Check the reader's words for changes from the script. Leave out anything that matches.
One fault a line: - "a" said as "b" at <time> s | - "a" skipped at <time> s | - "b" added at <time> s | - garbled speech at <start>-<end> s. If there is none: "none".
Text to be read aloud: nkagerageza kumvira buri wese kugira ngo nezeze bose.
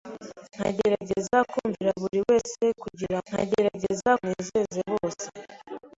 - "ngo" said as "nkagerageza" at 3.3 s